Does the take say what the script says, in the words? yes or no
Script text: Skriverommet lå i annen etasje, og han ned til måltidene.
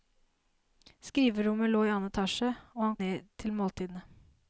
yes